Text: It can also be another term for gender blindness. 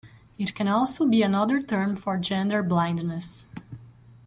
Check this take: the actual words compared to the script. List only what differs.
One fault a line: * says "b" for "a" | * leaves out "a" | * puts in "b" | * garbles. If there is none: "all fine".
all fine